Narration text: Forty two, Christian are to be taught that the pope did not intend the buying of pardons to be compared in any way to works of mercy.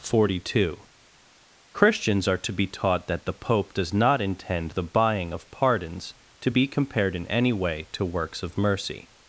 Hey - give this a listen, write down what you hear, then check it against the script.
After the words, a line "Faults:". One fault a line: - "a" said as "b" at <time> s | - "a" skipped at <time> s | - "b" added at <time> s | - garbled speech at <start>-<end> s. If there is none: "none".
Forty two, Christians are to be taught that the pope does not intend the buying of pardons to be compared in any way to works of mercy.
Faults:
- "Christian" said as "Christians" at 1.7 s
- "did" said as "does" at 3.7 s